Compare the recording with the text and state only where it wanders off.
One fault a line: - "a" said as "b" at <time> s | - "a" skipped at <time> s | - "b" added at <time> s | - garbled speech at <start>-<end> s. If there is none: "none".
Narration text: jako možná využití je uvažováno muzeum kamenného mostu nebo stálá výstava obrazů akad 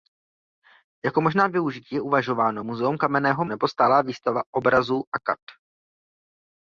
- "mostu" skipped at 3.4 s